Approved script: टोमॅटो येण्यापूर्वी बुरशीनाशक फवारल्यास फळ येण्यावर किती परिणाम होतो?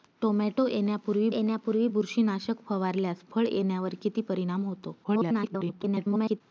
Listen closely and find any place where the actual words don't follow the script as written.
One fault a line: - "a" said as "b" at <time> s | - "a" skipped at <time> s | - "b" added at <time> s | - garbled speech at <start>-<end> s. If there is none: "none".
- "येण्यापूर्वी" added at 1.3 s
- garbled speech at 5.0-6.4 s